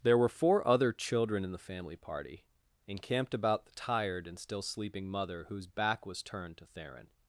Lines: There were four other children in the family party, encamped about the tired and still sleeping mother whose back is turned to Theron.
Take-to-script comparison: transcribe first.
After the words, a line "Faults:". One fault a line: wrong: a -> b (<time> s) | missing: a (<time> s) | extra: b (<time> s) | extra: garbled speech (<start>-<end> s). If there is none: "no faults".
There were four other children in the family party, encamped about the tired and still sleeping mother whose back was turned to Theron.
Faults:
wrong: is -> was (6.1 s)